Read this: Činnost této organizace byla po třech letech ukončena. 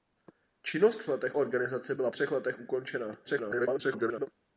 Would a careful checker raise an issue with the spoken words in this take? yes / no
yes